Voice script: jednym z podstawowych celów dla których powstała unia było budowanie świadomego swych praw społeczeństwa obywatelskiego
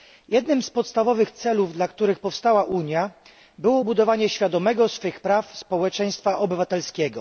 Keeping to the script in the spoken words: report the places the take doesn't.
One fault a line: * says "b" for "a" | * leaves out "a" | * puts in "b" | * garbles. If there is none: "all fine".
all fine